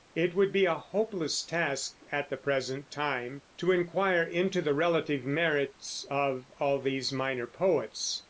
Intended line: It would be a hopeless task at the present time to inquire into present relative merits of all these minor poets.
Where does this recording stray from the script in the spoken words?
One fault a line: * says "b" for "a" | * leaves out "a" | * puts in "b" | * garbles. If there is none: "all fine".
* says "the" for "present"